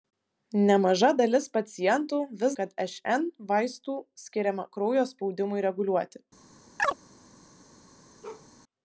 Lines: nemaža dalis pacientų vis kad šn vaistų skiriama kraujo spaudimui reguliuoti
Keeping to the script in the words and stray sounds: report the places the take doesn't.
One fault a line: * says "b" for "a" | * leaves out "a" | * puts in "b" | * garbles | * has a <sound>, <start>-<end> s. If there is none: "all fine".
* has a chirp, 6.8-7.0 s
* has a bark, 8.2-8.5 s